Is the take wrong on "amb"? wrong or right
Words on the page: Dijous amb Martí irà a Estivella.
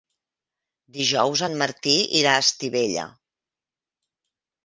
wrong